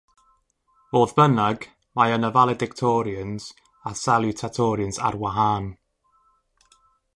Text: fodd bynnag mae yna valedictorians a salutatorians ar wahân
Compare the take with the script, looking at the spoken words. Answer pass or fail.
pass